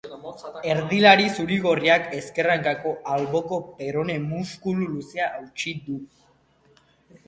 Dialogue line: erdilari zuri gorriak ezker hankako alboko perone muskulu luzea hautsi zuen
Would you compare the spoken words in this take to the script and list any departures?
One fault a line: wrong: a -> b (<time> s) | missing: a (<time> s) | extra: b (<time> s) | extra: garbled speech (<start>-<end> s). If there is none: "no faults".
wrong: zuen -> du (5.9 s)